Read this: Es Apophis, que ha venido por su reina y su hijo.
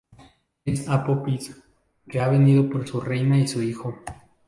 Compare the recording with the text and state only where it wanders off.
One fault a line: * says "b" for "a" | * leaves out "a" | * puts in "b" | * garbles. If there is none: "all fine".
all fine